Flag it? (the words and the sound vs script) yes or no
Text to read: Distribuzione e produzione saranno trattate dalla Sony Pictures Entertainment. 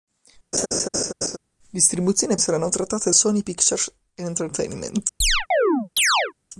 yes